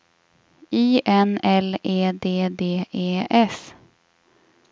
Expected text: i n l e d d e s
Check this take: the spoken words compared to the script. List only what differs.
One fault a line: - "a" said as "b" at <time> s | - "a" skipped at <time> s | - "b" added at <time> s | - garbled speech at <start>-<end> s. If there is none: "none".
none